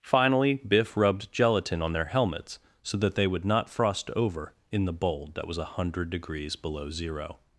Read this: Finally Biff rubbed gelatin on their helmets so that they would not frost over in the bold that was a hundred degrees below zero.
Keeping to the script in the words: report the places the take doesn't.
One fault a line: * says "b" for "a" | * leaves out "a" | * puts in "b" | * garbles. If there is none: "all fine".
all fine